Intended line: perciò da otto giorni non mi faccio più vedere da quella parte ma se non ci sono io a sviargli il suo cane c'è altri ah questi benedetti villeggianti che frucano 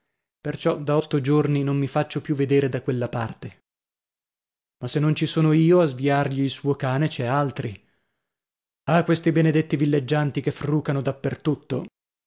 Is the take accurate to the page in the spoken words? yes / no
yes